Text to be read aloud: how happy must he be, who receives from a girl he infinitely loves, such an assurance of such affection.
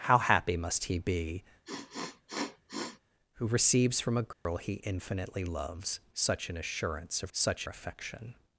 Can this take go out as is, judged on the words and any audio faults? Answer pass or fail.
fail